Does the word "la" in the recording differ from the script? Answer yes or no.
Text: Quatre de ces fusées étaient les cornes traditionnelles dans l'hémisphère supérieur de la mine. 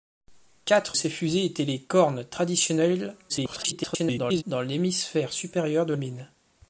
yes